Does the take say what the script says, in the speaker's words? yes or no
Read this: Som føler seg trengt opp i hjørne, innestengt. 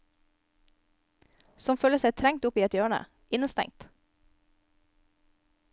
no